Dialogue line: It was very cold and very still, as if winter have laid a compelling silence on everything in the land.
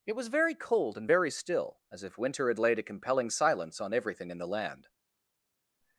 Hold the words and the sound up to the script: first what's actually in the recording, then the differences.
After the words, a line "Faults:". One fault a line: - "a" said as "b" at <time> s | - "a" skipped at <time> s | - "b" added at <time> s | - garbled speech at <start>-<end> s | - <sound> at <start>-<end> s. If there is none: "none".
It was very cold and very still, as if winter had laid a compelling silence on everything in the land.
Faults:
- "have" said as "had" at 2.5 s